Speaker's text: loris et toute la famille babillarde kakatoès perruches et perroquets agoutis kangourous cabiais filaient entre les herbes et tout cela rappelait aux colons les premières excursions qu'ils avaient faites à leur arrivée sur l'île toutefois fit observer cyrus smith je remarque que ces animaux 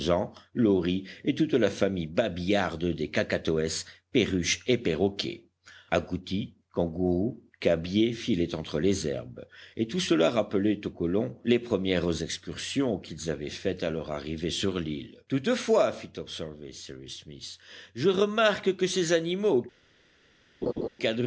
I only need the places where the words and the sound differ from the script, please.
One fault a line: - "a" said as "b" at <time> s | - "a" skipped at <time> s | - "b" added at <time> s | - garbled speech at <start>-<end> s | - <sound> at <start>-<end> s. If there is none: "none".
- "des" added at 2.9 s
- laugh at 20.6-20.9 s